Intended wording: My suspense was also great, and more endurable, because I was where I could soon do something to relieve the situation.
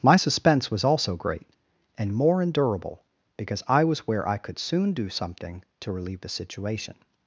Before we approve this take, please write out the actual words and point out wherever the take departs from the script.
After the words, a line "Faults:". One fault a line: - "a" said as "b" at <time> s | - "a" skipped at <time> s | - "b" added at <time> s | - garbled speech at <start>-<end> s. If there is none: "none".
My suspense was also great, and more endurable, because I was where I could soon do something to relieve the situation.
Faults:
none